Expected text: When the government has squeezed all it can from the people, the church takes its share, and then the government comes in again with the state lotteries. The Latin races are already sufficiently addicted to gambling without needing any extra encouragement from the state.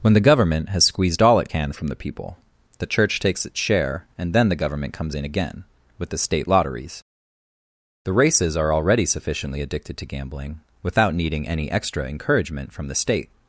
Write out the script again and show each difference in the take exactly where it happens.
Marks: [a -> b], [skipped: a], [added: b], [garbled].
When the government has squeezed all it can from the people, the church takes its share, and then the government comes in again with the state lotteries. The [skipped: Latin] races are already sufficiently addicted to gambling without needing any extra encouragement from the state.